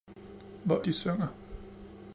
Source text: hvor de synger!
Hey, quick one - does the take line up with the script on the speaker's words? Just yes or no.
yes